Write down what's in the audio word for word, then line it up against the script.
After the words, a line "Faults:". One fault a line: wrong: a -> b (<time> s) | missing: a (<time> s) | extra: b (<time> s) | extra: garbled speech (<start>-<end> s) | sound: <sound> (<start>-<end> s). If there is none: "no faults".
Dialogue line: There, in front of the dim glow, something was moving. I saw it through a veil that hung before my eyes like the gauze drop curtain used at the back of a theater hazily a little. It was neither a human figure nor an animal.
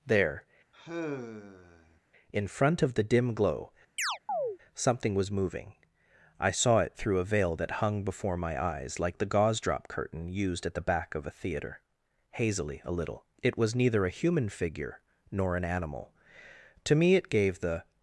There, in front of the dim glow, something was moving. I saw it through a veil that hung before my eyes like the gauze drop curtain used at the back of a theater hazily a little. It was neither a human figure nor an animal. To me it gave the
Faults:
sound: sigh (0.7-2.0 s)
sound: chirp (4.0-4.6 s)
extra: To me it gave the (16.9 s)